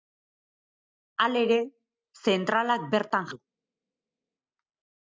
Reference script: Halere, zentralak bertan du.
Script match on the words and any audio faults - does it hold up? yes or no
yes